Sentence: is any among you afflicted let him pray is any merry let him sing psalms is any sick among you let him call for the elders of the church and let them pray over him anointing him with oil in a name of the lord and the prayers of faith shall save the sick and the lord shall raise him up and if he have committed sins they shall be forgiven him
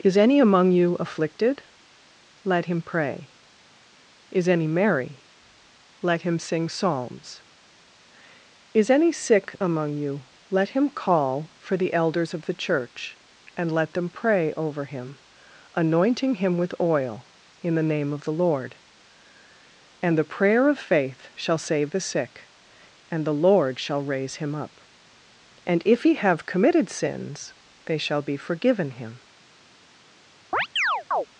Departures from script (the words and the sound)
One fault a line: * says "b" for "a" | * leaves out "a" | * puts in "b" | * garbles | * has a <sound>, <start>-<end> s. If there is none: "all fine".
* says "the" for "a"
* says "prayer" for "prayers"
* has a chirp, 30.5-31.3 s